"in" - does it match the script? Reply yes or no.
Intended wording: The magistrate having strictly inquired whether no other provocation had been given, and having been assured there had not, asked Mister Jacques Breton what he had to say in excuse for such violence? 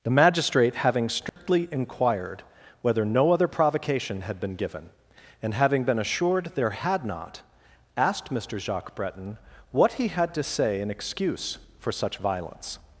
yes